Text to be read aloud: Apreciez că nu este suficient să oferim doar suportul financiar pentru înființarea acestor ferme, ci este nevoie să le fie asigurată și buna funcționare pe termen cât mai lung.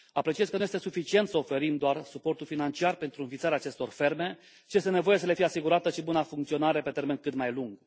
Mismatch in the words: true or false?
false